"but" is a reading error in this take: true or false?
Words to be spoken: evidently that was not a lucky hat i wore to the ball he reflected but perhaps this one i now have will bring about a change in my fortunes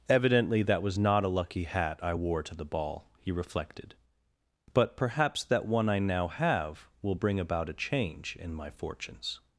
false